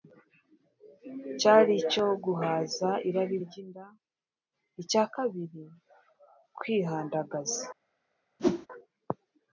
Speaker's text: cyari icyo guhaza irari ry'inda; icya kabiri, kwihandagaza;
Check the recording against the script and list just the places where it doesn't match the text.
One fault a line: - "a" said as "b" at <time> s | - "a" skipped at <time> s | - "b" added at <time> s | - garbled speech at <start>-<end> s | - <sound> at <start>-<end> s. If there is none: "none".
- whoosh at 8.4-8.7 s